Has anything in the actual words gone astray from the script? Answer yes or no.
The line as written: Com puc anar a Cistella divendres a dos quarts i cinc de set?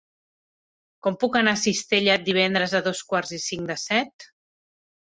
no